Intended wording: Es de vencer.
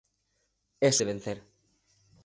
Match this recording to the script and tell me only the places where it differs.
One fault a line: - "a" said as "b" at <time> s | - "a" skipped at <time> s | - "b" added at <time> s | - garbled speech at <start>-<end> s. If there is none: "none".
none